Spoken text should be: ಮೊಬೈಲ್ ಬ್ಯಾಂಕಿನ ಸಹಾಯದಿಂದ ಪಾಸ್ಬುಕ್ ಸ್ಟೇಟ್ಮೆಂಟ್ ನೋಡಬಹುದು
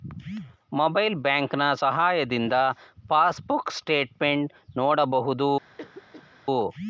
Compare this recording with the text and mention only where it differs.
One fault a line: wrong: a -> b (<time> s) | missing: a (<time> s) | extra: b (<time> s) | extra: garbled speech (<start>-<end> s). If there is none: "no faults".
no faults